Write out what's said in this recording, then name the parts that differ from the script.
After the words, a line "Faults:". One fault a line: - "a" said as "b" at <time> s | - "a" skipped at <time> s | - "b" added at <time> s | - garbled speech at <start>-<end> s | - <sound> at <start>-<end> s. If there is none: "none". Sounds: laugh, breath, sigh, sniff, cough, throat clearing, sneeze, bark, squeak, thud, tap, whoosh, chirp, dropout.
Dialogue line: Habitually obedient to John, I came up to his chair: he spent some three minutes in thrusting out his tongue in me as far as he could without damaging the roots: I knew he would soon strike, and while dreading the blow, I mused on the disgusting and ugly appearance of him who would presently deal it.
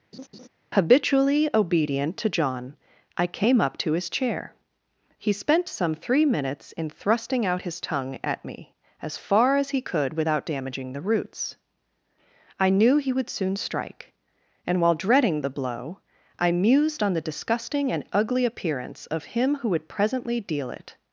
Habitually obedient to John, I came up to his chair: he spent some three minutes in thrusting out his tongue at me as far as he could without damaging the roots: I knew he would soon strike, and while dreading the blow, I mused on the disgusting and ugly appearance of him who would presently deal it.
Faults:
- laugh at 0.1-0.5 s
- "in" said as "at" at 8.2 s